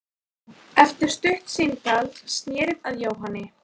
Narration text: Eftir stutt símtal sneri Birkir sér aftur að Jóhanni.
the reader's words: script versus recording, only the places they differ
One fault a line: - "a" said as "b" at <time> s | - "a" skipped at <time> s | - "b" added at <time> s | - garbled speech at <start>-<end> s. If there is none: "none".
- "Birkir sér aftur" skipped at 2.8 s